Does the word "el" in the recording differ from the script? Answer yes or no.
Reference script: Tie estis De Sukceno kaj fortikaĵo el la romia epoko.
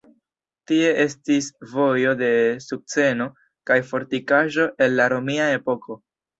no